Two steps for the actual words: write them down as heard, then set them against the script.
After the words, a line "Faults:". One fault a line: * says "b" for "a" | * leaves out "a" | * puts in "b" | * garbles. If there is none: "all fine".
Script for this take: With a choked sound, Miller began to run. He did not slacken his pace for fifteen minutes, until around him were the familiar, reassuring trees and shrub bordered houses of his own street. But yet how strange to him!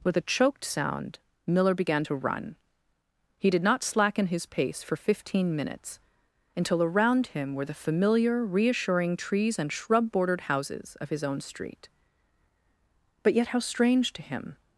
With a choked sound, Miller began to run. He did not slacken his pace for fifteen minutes, until around him were the familiar, reassuring trees and shrub bordered houses of his own street. But yet how strange to him!
Faults:
all fine